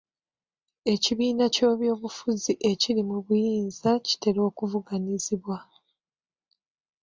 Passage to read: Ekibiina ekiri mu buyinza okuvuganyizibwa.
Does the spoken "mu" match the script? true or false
true